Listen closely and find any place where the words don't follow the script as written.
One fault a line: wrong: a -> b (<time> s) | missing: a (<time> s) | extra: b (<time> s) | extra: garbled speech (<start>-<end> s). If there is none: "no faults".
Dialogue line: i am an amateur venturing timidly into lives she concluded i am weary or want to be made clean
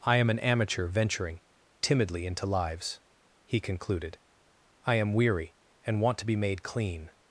wrong: she -> he (3.5 s)
wrong: or -> and (5.8 s)